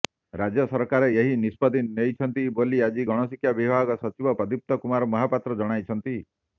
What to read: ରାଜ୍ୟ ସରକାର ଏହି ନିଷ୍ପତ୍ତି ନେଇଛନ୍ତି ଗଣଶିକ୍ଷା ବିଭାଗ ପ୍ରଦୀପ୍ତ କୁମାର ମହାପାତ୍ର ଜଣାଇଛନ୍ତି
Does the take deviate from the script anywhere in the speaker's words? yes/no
yes